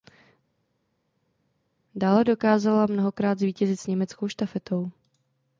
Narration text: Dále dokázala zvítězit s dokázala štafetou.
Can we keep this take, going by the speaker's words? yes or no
no